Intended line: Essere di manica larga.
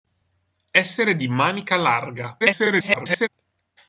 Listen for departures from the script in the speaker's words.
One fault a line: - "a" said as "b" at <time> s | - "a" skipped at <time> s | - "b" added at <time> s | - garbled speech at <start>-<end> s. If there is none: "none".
- garbled speech at 2.4-3.3 s